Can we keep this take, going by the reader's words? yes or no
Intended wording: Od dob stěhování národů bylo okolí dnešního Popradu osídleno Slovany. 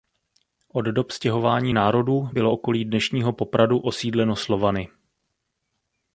yes